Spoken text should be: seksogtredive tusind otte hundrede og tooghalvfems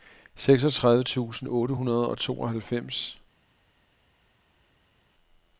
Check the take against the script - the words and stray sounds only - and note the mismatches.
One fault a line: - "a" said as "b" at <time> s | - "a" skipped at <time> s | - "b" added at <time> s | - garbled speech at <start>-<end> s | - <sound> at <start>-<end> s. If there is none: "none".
none